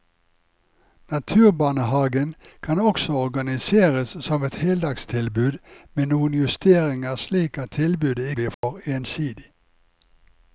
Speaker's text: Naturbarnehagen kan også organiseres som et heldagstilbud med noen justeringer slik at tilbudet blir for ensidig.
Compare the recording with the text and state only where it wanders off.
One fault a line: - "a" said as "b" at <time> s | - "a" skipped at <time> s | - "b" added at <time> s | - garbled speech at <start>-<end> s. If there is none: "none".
none